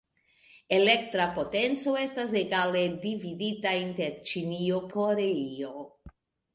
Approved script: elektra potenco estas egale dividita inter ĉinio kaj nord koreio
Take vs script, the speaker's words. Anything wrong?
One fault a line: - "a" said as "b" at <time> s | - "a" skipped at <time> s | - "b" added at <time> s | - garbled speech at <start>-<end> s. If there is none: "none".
- "kaj nord" skipped at 4.8 s